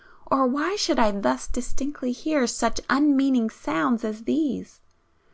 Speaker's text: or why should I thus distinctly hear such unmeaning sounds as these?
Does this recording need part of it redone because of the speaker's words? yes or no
no